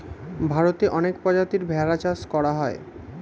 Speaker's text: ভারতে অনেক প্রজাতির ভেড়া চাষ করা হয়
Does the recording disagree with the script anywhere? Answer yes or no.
no